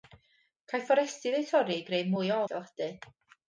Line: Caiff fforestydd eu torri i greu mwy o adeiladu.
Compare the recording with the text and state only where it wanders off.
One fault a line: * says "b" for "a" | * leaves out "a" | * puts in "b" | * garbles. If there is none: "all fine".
all fine